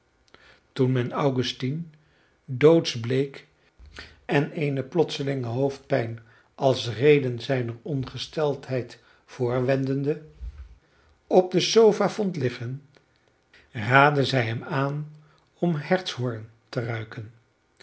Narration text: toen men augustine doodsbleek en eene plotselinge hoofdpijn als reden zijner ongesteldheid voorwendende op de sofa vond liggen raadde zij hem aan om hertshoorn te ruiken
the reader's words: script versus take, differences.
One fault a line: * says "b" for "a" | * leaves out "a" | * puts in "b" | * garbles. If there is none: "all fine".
all fine